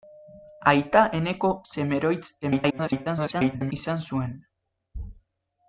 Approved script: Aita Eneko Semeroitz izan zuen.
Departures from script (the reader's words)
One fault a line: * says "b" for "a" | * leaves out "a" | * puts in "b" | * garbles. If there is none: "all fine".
* garbles